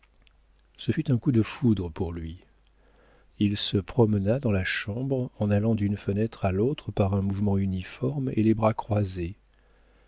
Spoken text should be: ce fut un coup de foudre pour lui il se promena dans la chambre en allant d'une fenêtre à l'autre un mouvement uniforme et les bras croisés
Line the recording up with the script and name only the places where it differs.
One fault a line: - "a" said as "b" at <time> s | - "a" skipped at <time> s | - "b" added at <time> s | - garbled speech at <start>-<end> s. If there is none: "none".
- "par" added at 6.9 s